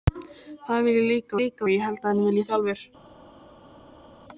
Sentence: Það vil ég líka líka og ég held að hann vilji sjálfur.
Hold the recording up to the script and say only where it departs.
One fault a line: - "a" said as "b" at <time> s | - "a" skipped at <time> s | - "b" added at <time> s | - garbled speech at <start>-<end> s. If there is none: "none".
none